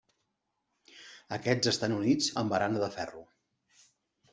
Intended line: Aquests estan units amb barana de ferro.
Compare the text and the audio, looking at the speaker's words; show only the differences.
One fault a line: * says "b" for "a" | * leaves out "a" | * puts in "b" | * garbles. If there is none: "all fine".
all fine